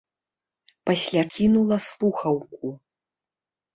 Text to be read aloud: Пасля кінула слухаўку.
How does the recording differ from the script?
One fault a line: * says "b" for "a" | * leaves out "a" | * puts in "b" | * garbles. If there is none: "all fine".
all fine